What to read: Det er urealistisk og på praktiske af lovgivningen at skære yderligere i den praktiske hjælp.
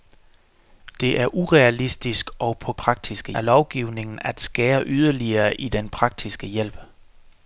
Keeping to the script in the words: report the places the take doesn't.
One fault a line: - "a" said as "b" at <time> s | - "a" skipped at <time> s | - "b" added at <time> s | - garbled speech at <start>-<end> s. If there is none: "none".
none